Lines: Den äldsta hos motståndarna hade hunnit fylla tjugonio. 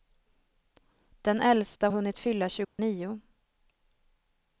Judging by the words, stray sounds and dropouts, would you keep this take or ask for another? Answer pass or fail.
fail